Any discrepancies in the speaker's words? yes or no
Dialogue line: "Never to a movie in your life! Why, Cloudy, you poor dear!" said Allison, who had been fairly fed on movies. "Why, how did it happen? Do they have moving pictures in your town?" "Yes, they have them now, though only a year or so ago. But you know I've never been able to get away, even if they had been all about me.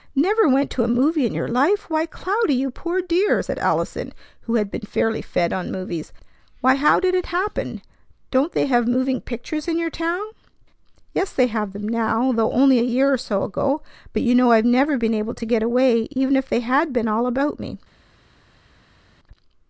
yes